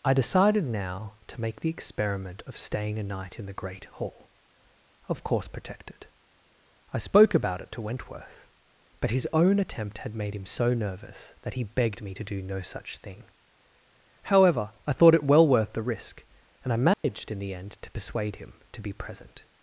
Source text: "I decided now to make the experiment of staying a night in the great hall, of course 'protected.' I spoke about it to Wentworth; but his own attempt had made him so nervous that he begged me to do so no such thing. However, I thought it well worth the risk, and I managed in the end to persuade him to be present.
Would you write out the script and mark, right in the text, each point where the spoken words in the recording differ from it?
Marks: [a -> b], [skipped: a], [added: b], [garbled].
"I decided now to make the experiment of staying a night in the great hall, of course 'protected.' I spoke about it to Wentworth; but his own attempt had made him so nervous that he begged me to do [skipped: so] no such thing. However, I thought it well worth the risk, and I managed in the end to persuade him to be present.